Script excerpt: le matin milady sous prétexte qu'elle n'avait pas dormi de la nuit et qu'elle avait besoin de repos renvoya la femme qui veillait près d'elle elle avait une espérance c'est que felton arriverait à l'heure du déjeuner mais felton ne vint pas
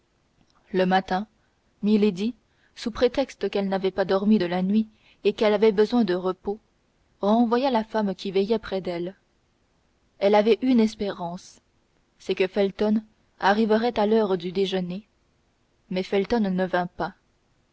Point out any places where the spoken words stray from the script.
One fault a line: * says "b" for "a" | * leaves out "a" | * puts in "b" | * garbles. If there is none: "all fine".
all fine